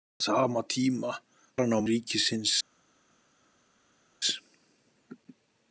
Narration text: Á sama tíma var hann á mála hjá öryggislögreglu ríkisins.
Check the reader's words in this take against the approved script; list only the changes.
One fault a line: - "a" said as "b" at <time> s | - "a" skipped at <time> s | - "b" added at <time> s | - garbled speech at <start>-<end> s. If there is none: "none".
- "var" skipped at 1.1 s
- "mála hjá öryggislögreglu" skipped at 1.8 s